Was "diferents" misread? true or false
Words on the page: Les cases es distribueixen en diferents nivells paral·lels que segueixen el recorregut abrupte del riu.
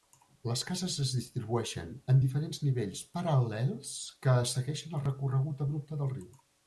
false